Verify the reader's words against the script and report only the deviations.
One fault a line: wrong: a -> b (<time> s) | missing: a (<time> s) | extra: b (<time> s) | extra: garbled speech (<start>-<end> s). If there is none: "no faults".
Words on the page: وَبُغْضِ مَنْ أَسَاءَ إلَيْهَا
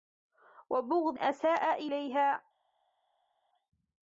missing: مَنْ (1.2 s)